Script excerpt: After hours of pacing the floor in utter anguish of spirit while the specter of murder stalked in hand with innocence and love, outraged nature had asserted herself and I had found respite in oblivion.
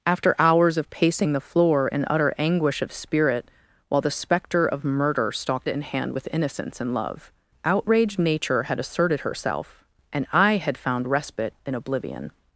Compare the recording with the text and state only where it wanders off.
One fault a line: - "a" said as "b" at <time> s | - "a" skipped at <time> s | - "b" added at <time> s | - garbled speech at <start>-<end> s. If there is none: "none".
none